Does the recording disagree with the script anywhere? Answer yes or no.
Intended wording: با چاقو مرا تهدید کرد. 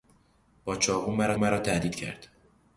yes